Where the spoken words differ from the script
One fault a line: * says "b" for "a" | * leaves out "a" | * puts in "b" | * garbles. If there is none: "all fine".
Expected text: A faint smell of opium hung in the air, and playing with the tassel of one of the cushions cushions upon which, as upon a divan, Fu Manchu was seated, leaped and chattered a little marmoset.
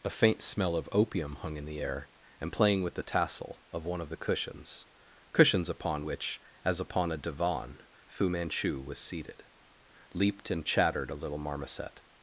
all fine